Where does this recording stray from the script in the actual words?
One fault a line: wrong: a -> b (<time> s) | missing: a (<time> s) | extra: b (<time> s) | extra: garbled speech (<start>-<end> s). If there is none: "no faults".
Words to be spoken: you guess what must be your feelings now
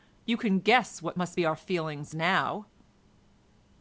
extra: can (0.3 s)
wrong: your -> our (1.4 s)